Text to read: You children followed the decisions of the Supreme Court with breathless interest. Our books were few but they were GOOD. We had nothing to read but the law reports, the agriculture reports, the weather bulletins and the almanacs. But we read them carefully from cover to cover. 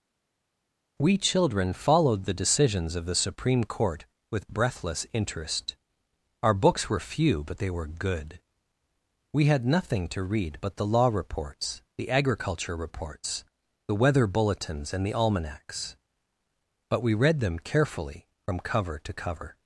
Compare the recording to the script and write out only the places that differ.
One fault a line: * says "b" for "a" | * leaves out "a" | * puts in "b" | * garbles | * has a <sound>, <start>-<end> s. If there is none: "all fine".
* says "We" for "You"